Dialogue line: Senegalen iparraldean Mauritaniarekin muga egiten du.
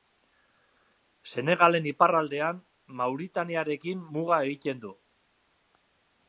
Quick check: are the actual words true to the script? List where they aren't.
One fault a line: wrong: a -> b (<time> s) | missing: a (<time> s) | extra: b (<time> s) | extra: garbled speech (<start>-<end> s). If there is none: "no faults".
no faults